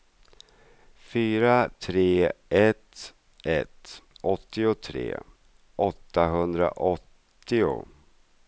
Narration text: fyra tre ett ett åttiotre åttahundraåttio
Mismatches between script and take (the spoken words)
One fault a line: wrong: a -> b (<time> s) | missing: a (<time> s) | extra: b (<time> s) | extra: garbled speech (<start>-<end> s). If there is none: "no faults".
no faults